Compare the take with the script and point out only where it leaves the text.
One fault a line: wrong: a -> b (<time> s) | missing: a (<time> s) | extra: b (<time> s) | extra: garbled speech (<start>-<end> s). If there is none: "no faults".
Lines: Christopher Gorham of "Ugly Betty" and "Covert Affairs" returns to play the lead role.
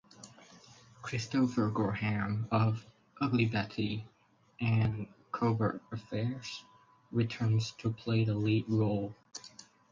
no faults